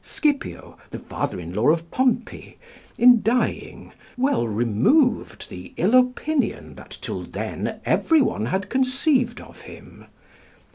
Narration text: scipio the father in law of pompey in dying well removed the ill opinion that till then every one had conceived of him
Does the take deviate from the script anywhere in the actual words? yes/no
no